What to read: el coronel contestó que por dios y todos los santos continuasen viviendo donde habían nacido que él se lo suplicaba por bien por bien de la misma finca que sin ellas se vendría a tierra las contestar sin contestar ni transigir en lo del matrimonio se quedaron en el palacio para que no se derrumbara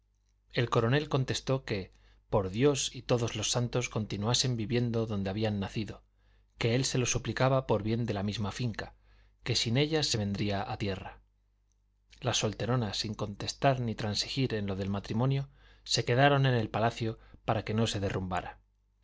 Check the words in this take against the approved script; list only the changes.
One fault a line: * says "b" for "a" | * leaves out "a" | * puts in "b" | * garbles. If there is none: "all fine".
* leaves out "por bien"
* says "solteronas" for "contestar"